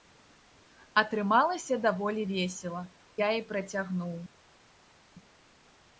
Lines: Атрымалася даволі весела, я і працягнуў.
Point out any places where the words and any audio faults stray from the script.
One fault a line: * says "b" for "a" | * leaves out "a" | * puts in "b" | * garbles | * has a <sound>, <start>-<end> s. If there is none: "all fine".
all fine